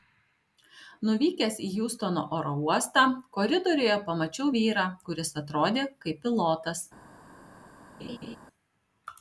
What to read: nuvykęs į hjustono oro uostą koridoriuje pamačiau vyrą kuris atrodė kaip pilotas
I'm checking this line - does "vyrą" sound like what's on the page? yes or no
yes